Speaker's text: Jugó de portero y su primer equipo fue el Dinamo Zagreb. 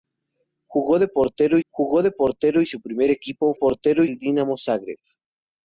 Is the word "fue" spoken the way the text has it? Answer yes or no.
no